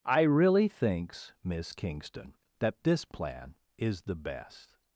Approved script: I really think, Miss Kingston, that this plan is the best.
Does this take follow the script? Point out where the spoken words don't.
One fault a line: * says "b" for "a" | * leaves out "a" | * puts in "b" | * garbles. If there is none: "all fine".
* says "thinks" for "think"